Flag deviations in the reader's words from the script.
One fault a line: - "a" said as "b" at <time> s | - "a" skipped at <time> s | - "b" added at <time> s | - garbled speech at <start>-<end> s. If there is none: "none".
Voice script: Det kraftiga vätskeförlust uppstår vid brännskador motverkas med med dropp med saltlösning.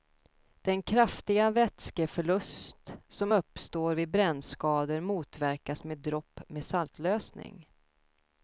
- "Det" said as "Den" at 0.6 s
- "som" added at 3.1 s
- "med" skipped at 6.0 s